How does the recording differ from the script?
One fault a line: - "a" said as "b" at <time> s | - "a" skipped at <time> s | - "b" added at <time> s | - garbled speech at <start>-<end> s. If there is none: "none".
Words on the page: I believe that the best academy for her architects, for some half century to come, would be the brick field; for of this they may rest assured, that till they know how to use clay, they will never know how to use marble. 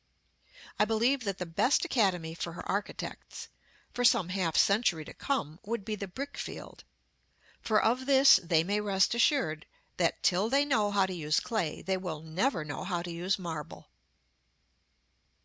none